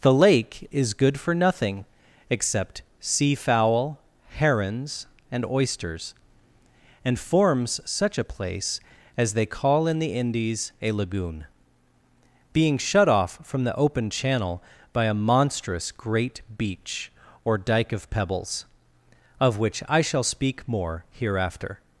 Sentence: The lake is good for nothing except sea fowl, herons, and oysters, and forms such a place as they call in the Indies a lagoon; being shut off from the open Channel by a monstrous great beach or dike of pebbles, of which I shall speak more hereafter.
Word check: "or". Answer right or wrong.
right